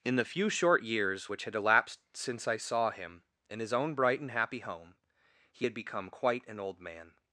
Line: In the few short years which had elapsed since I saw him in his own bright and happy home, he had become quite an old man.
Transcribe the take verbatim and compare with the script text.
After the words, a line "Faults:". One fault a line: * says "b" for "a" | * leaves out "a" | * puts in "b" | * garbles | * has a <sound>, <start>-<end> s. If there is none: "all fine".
In the few short years which had elapsed since I saw him in his own bright and happy home, he had become quite an old man.
Faults:
all fine